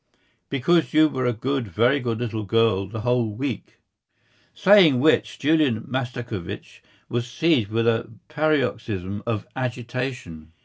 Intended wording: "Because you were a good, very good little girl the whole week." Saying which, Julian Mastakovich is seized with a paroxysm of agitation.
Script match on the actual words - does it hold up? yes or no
no